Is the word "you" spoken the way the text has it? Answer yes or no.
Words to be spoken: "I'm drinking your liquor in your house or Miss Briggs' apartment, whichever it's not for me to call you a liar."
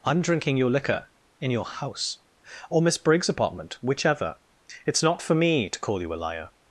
yes